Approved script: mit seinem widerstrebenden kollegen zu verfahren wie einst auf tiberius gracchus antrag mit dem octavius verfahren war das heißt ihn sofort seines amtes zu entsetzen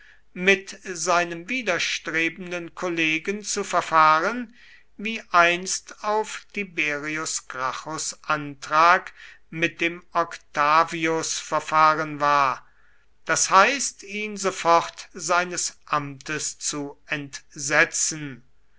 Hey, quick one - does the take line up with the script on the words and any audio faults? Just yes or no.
yes